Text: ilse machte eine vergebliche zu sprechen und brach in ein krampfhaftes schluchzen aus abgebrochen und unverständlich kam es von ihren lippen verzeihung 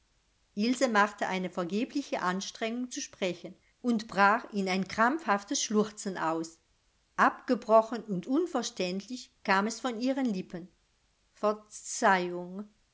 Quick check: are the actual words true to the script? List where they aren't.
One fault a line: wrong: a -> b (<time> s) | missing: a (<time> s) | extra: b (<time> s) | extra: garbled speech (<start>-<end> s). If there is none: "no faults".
extra: anstrengung (2.2 s)